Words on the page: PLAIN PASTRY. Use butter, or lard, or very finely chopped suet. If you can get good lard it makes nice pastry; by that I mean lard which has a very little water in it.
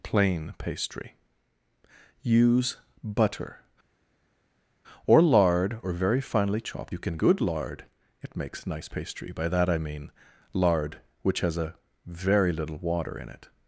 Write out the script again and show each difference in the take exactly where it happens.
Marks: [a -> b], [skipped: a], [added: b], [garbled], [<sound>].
PLAIN PASTRY. Use butter, or lard, or very finely chopped [skipped: suet. If] you can [skipped: get] good lard it makes nice pastry; by that I mean lard which has a very little water in it.